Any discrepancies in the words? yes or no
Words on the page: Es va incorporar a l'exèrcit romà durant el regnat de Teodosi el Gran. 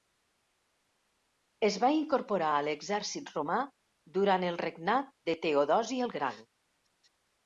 no